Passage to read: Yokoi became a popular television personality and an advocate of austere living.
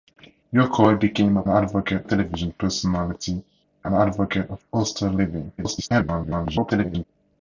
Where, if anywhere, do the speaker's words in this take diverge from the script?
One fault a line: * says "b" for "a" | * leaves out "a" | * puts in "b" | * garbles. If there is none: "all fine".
* says "advocate" for "popular"
* leaves out "and"
* garbles